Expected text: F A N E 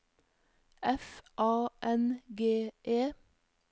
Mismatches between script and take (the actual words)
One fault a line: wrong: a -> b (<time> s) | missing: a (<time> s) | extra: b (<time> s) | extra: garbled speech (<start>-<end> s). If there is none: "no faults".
extra: G (2.3 s)